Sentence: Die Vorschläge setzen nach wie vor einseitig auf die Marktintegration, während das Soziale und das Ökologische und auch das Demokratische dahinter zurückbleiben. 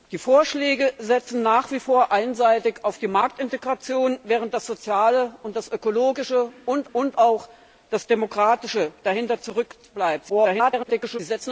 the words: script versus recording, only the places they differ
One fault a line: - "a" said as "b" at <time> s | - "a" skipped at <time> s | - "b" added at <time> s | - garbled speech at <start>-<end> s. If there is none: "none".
- "und" added at 6.9 s
- garbled speech at 10.3-11.2 s